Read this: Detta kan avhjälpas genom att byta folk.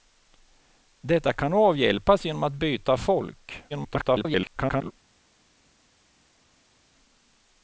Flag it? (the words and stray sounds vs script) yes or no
yes